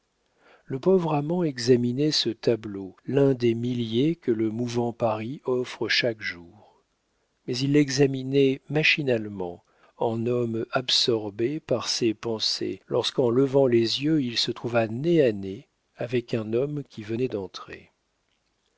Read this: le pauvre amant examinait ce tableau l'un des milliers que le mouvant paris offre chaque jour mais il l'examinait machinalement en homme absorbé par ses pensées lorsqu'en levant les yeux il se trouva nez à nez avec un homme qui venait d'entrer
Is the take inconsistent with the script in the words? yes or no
no